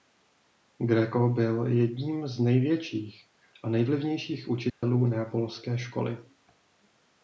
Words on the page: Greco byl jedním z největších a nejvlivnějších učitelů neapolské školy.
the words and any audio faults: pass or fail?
fail